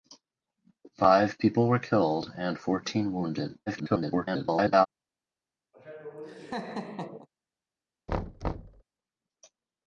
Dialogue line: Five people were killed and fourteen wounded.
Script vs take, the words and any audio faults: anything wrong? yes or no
yes